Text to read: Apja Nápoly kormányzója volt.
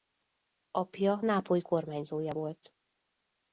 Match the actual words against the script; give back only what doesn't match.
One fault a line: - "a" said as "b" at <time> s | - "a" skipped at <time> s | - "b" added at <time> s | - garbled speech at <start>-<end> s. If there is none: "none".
none